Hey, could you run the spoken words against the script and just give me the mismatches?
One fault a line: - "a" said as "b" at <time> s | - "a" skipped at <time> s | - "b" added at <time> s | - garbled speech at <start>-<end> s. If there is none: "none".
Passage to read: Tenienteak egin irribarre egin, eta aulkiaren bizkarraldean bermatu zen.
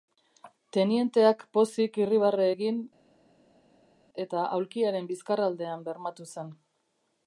- "egin" said as "pozik" at 1.6 s